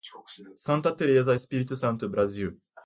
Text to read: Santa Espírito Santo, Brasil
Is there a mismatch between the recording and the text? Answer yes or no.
yes